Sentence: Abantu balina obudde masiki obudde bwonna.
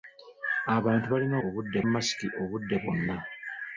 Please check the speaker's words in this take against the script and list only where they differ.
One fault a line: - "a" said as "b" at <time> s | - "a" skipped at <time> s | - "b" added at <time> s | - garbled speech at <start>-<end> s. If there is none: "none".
none